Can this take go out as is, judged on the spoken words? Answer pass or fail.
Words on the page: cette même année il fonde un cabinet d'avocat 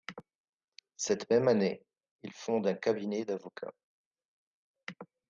pass